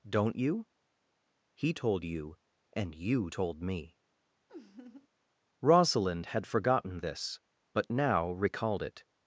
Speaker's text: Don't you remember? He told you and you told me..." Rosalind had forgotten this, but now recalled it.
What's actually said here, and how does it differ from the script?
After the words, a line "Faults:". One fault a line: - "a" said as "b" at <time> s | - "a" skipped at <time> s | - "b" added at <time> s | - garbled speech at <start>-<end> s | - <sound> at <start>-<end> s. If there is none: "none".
Don't you? He told you and you told me..." Rosalind had forgotten this, but now recalled it.
Faults:
- "remember" skipped at 0.7 s
- laugh at 4.5-5.1 s